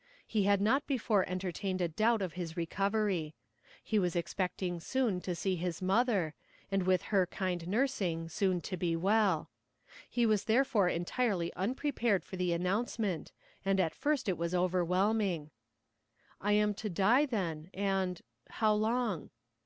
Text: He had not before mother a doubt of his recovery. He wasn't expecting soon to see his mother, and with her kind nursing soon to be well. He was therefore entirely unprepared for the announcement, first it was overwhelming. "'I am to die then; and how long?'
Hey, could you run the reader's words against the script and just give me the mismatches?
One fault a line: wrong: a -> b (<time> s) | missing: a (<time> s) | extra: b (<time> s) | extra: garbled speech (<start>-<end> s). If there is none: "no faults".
wrong: mother -> entertained (1.3 s)
wrong: wasn't -> was (4.0 s)
extra: and at (13.6 s)